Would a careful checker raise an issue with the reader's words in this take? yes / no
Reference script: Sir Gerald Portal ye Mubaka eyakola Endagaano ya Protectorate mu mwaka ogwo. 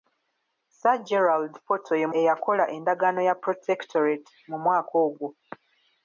yes